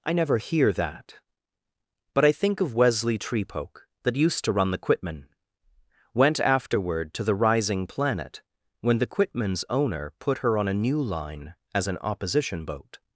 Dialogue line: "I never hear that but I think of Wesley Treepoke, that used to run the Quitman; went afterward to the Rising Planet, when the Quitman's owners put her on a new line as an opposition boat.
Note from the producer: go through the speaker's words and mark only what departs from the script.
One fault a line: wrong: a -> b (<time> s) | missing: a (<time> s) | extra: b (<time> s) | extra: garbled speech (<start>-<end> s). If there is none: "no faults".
wrong: owners -> owner (9.7 s)